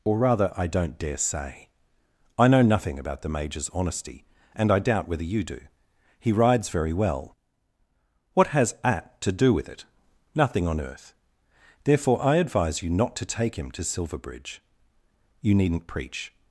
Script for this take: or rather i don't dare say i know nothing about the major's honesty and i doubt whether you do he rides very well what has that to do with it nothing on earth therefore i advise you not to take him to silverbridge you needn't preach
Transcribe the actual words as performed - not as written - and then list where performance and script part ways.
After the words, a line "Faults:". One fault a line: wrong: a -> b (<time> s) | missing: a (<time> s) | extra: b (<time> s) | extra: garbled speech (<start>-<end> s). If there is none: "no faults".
or rather i don't dare say i know nothing about the major's honesty and i doubt whether you do he rides very well what has at to do with it nothing on earth therefore i advise you not to take him to silverbridge you needn't preach
Faults:
wrong: that -> at (8.8 s)